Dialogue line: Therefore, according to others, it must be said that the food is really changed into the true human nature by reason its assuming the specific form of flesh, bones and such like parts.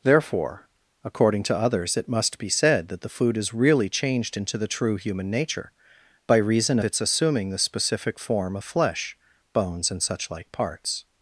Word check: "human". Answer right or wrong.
right